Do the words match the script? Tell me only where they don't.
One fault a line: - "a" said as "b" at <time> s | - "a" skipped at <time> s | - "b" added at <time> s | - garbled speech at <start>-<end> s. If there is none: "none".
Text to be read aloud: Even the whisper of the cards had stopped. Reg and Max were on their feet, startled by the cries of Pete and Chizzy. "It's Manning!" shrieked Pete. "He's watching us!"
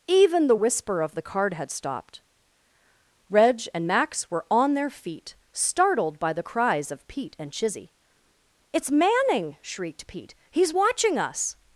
- "cards" said as "card" at 1.2 s